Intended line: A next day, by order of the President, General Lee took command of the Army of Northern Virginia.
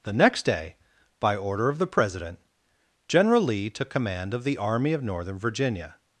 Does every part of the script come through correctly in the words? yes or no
no